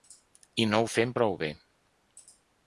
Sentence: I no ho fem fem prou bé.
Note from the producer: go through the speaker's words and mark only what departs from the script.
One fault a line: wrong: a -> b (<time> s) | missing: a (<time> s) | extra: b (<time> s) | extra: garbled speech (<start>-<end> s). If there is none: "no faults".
missing: fem (1.1 s)